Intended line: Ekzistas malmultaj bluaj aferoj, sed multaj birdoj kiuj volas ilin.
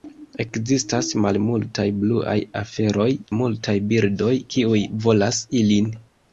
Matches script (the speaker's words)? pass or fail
fail